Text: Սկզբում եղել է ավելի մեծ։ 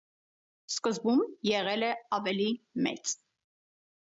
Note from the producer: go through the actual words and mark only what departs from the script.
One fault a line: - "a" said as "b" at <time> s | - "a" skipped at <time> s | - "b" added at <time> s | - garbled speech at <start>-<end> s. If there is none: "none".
none